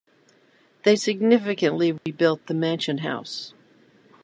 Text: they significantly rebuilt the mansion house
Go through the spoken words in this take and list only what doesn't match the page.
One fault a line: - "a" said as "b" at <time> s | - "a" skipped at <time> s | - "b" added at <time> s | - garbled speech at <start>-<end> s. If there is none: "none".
none